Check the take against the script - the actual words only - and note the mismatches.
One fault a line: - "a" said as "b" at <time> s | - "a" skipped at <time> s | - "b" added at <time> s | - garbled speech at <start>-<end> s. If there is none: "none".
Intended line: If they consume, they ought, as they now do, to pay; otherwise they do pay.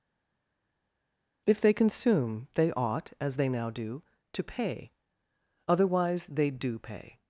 none